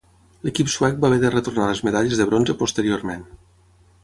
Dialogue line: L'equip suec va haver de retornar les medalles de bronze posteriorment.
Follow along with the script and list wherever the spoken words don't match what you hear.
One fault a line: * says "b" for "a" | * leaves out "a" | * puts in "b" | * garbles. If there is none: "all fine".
all fine